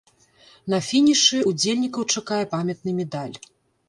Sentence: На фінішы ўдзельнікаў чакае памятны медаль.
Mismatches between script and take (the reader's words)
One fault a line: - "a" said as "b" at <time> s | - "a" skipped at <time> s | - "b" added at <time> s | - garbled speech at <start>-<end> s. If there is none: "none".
none